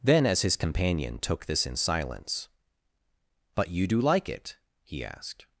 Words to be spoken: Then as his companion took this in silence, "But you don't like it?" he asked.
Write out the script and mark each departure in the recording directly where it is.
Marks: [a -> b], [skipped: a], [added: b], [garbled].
Then as his companion took this in silence, "But you [don't -> do] like it?" he asked.